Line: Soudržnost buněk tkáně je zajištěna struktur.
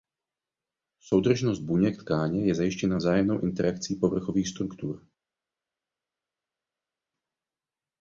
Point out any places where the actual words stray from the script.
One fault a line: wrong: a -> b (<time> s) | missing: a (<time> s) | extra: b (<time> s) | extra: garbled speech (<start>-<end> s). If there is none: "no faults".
extra: vzájemnou interakcí povrchových (2.9 s)